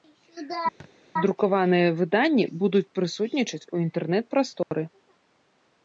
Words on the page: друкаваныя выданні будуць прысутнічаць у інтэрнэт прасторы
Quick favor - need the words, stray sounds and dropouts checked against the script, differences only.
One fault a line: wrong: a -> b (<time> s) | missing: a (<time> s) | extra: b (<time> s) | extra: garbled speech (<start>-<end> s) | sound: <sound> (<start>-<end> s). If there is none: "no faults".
sound: thud (0.8-0.9 s)
sound: dropout (4.6-4.7 s)